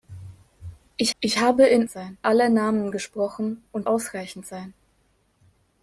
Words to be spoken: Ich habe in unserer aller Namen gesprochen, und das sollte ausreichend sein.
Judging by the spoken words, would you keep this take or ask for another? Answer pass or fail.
fail